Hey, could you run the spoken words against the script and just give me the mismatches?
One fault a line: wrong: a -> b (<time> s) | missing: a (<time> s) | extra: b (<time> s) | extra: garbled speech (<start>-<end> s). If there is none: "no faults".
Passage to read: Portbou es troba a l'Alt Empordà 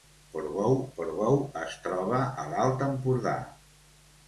extra: portbou (1.0 s)